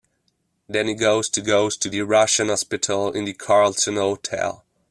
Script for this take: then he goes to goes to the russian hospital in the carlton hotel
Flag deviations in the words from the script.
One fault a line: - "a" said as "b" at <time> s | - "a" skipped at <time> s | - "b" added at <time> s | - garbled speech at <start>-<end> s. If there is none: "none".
none